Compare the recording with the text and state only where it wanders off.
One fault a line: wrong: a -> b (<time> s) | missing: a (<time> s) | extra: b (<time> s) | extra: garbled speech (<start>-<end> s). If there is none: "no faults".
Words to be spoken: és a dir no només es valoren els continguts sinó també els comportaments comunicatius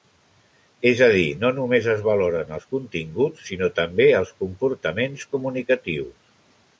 no faults